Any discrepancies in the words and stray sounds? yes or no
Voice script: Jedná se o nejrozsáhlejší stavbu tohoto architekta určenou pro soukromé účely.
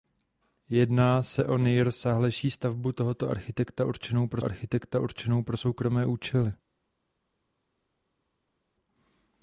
yes